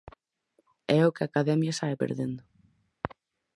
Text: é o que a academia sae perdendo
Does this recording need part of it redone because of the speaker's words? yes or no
no